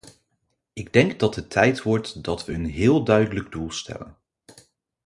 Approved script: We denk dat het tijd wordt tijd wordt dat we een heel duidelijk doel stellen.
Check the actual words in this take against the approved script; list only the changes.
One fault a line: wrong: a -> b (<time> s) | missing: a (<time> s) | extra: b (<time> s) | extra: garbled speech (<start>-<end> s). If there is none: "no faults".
wrong: We -> Ik (0.7 s)
missing: tijd wordt (2.2 s)